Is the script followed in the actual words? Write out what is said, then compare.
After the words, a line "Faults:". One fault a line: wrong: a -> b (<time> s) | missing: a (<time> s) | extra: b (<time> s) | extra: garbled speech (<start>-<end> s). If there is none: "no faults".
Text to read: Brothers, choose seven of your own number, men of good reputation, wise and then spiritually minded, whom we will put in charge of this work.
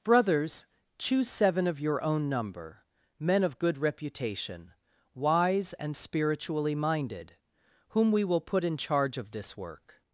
Brothers, choose seven of your own number, men of good reputation, wise and spiritually minded, whom we will put in charge of this work.
Faults:
missing: then (6.0 s)